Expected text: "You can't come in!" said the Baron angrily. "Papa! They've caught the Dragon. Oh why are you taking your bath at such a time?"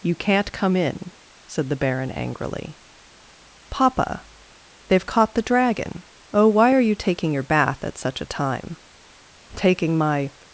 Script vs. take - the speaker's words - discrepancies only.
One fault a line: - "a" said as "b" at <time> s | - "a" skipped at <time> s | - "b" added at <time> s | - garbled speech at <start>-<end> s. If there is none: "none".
- "Taking my" added at 9.6 s